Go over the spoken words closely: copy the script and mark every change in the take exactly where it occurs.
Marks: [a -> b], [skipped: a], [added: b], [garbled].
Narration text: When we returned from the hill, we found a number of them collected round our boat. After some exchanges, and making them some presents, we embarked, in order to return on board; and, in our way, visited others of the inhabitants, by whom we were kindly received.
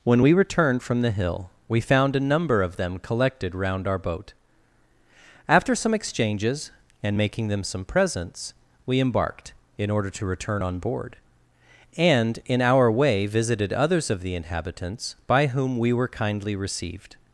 When we returned from the hill, we found a number of them collected round our boat. After some exchanges, and making them some presents, we embarked, in order to return on board; and, in our way, visited others of the inhabitants, by whom we were kindly received.